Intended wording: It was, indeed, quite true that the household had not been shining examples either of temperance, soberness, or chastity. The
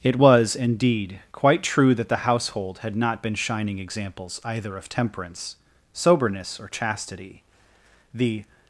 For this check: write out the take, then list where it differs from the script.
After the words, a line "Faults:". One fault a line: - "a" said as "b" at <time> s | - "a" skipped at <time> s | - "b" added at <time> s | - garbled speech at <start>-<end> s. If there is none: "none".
It was, indeed, quite true that the household had not been shining examples either of temperance, soberness, or chastity. The
Faults:
none